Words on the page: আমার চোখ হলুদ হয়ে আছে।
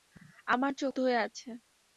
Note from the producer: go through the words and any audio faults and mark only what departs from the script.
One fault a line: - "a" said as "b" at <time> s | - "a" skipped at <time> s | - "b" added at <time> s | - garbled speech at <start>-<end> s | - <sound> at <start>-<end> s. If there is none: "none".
- "হলুদ" skipped at 0.9 s